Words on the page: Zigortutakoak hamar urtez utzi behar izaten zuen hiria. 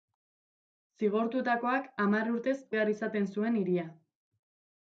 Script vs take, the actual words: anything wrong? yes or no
yes